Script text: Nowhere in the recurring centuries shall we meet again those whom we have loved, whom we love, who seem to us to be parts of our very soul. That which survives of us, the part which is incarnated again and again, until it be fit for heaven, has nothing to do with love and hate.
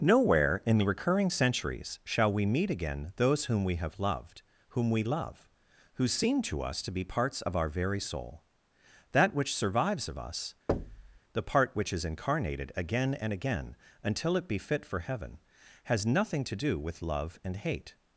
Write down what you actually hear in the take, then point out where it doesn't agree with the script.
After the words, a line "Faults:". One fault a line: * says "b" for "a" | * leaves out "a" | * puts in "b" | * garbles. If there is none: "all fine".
Nowhere in the recurring centuries shall we meet again those whom we have loved, whom we love, who seem to us to be parts of our very soul. That which survives of us, the part which is incarnated again and again, until it be fit for heaven, has nothing to do with love and hate.
Faults:
all fine